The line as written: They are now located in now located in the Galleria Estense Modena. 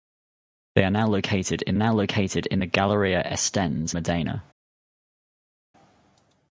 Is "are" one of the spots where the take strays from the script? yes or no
no